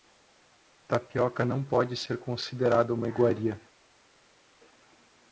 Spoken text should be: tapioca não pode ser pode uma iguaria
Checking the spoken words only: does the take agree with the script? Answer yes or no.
no